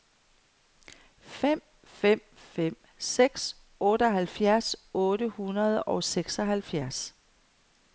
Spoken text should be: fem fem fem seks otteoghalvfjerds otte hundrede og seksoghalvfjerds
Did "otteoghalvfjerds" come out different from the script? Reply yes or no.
no